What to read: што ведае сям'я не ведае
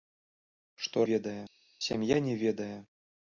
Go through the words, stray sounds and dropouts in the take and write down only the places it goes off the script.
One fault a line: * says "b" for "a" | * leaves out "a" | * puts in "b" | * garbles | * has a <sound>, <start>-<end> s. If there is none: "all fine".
all fine